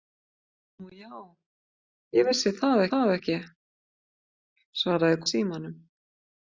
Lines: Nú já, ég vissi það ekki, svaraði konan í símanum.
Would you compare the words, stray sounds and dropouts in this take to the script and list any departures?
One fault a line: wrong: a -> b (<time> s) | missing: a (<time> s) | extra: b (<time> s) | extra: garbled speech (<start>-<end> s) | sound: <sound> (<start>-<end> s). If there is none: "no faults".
extra: það (2.9 s)
missing: konan (5.2 s)